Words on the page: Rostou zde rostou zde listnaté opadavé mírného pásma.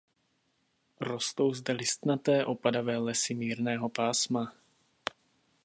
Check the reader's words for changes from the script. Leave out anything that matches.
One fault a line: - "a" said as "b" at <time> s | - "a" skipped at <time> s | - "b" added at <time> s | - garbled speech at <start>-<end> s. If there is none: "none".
- "rostou zde" skipped at 1.7 s
- "lesy" added at 3.0 s